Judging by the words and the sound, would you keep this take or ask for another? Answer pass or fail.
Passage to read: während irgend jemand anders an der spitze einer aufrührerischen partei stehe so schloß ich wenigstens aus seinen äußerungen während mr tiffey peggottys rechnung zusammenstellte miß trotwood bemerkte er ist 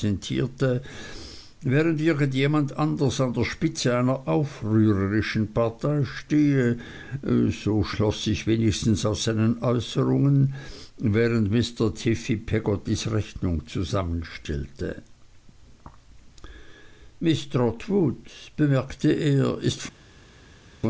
pass